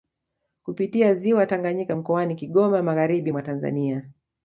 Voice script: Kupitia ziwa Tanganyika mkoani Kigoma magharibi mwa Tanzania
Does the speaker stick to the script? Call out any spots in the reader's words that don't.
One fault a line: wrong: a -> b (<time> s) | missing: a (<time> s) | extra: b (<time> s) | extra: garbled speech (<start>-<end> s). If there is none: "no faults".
no faults